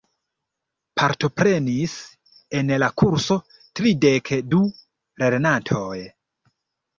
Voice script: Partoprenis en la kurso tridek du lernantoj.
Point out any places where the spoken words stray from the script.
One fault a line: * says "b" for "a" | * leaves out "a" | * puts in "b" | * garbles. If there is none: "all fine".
all fine